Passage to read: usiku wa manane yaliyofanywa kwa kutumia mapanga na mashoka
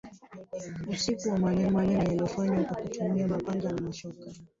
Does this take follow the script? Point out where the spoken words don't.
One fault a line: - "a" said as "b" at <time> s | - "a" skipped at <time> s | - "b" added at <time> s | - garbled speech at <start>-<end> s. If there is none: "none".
- "manane" added at 1.7 s